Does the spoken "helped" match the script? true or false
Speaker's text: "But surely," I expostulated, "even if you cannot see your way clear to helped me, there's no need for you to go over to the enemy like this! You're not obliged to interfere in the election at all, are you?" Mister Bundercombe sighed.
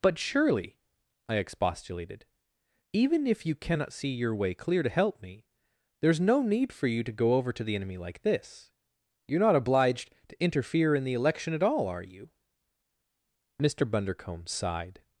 false